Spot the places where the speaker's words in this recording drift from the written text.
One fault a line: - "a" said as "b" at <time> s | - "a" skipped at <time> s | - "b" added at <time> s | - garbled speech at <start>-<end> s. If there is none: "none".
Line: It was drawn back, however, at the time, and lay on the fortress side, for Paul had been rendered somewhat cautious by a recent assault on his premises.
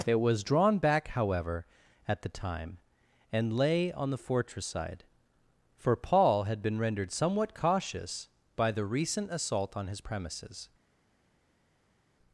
- "a" said as "the" at 8.7 s